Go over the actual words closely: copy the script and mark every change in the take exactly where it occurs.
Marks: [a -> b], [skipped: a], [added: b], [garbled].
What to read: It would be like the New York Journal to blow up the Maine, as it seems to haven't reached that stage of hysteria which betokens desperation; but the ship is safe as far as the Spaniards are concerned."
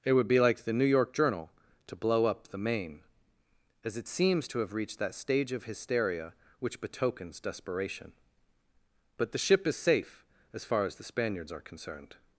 It would be like the New York Journal to blow up the Maine, as it seems to [haven't -> have] reached that stage of hysteria which betokens desperation; but the ship is safe as far as the Spaniards are concerned."